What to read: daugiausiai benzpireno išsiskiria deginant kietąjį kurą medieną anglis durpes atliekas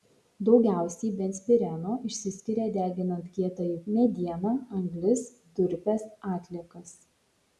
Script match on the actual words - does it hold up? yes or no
no